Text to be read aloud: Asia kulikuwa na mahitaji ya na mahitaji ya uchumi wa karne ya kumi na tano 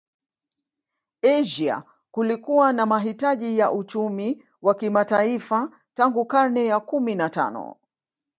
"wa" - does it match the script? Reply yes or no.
no